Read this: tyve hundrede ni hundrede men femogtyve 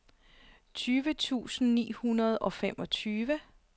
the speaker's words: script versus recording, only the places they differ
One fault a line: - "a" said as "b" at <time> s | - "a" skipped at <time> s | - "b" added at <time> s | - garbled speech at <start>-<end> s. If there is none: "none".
- "hundrede" said as "tusind" at 1.1 s
- "men" said as "og" at 2.4 s